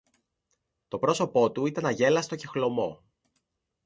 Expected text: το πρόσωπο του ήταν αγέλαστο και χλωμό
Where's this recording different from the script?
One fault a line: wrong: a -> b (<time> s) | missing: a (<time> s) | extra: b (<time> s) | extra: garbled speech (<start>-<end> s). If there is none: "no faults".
no faults